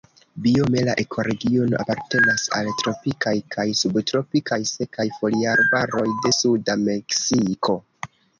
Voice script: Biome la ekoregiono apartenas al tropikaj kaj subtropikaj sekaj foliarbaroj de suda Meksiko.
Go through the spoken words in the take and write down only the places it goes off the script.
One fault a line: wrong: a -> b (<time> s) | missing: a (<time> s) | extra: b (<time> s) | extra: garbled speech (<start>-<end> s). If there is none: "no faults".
no faults